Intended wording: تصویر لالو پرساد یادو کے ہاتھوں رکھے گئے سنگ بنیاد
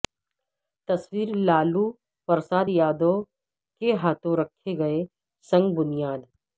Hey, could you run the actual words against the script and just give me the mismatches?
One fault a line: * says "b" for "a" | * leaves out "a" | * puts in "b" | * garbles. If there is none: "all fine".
all fine